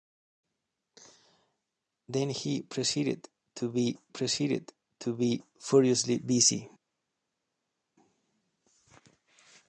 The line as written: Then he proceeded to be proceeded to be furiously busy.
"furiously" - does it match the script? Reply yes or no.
yes